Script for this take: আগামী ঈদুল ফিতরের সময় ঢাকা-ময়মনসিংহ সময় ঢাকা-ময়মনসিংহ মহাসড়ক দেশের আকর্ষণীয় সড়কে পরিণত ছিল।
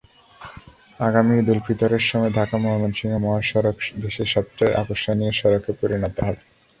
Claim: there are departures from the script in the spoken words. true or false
true